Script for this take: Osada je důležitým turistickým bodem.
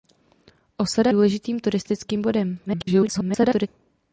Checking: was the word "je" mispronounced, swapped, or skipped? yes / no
yes